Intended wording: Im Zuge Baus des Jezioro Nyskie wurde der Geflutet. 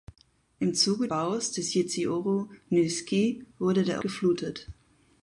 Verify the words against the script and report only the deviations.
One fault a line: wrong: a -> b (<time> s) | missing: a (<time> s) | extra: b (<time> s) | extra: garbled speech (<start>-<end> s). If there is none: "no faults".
no faults